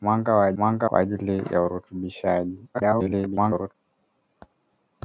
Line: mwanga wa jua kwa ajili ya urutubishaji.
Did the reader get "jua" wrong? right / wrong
wrong